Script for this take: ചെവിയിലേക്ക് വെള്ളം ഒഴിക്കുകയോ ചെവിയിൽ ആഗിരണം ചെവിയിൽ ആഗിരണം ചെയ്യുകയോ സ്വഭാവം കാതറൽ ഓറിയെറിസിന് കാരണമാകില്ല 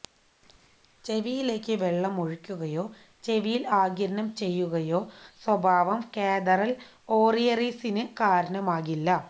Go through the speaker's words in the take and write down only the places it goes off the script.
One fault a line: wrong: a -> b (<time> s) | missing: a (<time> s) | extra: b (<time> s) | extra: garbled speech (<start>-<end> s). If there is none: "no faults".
missing: ചെവിയിൽ ആഗിരണം (4.3 s)